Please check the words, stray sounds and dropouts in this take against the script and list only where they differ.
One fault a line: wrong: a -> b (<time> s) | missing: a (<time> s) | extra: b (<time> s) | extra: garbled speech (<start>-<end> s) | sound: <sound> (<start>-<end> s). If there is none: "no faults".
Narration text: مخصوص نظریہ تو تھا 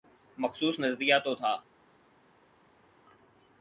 no faults